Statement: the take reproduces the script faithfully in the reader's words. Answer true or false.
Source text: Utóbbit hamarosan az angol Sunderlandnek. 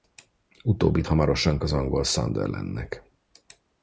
true